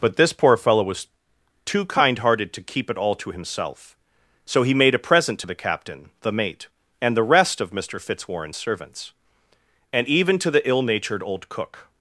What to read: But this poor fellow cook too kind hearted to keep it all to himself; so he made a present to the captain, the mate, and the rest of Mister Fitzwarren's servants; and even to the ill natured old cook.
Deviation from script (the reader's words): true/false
true